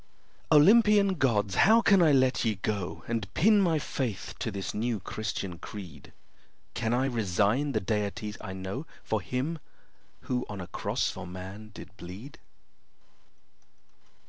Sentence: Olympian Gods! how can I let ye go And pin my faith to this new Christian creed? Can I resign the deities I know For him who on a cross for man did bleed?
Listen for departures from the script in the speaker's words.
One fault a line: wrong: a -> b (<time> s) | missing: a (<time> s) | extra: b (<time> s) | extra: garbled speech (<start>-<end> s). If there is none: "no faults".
no faults